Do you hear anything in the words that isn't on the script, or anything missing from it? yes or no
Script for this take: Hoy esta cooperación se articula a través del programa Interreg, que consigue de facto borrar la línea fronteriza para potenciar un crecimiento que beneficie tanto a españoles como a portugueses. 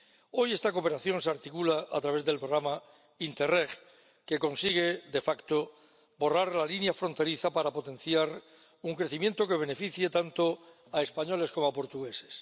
no